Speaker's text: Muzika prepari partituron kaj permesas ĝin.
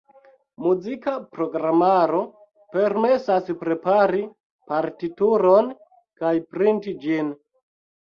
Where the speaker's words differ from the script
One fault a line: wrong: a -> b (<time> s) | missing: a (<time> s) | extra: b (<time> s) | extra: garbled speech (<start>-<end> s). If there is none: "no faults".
extra: programaro permesas (1.3 s)
wrong: permesas -> printi (6.5 s)